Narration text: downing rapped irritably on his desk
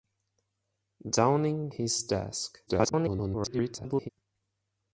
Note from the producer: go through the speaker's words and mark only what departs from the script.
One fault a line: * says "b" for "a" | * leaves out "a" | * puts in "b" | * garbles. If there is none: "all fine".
* leaves out "rapped irritably on"
* garbles